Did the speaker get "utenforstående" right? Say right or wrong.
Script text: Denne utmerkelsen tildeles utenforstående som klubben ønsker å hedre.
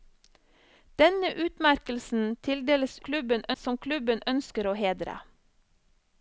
wrong